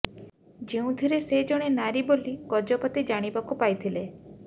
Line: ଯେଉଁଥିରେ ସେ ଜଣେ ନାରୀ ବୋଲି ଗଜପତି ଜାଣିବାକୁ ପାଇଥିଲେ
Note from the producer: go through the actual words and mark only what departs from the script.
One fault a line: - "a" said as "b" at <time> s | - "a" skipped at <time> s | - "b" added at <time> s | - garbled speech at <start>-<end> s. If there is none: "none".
none